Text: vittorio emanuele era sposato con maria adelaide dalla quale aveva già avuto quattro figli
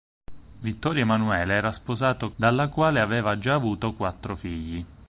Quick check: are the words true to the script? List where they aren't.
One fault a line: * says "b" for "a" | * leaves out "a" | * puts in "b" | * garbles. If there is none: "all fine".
* leaves out "con maria adelaide"